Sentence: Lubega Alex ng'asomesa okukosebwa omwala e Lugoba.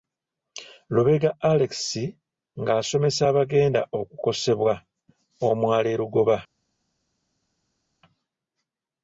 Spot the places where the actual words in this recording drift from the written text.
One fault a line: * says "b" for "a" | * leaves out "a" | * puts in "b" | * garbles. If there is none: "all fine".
* puts in "abagenda"